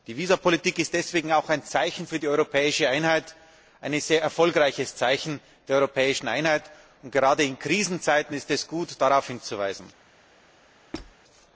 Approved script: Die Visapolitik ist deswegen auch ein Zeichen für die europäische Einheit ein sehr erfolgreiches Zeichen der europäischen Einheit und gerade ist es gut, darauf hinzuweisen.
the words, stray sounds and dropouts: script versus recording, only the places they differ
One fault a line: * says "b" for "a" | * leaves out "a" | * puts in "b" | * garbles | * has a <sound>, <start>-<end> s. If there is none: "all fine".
* puts in "in Krisenzeiten"
* has a squeak, 10.9-11.2 s